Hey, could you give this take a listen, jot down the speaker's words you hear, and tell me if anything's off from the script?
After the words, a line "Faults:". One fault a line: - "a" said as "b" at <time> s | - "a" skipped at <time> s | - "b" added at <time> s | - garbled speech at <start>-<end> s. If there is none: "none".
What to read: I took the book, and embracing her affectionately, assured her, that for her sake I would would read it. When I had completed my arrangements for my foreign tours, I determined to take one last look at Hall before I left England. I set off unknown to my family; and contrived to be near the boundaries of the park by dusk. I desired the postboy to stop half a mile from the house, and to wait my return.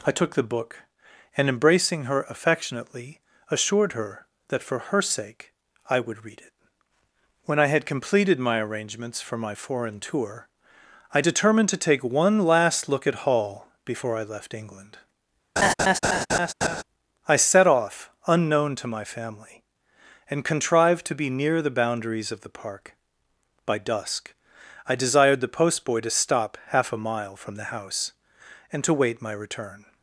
I took the book, and embracing her affectionately, assured her, that for her sake I would read it. When I had completed my arrangements for my foreign tour, I determined to take one last look at Hall before I left England. I set off unknown to my family; and contrived to be near the boundaries of the park by dusk. I desired the postboy to stop half a mile from the house, and to wait my return.
Faults:
- "would" skipped at 6.2 s
- "tours" said as "tour" at 10.0 s